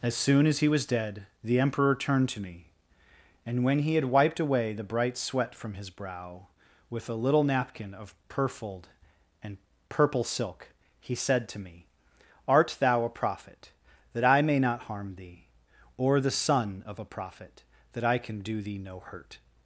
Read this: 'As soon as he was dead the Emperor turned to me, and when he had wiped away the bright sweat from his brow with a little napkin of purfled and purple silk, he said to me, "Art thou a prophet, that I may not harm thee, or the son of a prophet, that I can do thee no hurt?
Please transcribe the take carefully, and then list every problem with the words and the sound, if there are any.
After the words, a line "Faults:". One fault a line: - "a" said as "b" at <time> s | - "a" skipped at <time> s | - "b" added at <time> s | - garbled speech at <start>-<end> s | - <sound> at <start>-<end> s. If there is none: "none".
'As soon as he was dead the Emperor turned to me, and when he had wiped away the bright sweat from his brow with a little napkin of purfled and purple silk, he said to me, "Art thou a prophet, that I may not harm thee, or the son of a prophet, that I can do thee no hurt?
Faults:
none